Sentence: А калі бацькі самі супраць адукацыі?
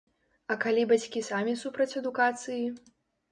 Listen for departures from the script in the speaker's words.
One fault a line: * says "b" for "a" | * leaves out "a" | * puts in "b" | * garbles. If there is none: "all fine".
all fine